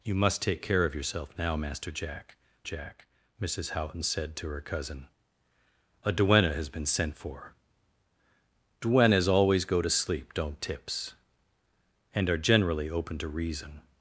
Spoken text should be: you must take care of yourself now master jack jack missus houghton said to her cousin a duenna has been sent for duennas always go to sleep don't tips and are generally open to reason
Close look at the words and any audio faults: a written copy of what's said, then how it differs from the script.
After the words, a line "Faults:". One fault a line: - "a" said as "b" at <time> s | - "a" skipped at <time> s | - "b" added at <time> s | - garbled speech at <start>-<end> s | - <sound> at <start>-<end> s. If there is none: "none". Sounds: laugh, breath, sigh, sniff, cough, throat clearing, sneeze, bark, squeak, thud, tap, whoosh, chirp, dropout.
you must take care of yourself now master jack jack missus houghton said to her cousin a duenna has been sent for duennas always go to sleep don't tips and are generally open to reason
Faults:
none